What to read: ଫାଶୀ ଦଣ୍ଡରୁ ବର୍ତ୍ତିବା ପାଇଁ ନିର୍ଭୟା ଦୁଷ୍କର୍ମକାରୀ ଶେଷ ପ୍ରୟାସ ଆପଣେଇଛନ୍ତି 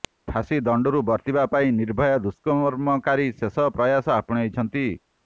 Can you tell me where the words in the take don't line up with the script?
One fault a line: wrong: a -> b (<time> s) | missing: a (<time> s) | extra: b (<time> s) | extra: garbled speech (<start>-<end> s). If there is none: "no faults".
no faults